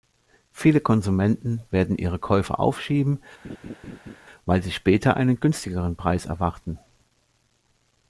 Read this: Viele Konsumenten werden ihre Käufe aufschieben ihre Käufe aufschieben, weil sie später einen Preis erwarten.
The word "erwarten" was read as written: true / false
true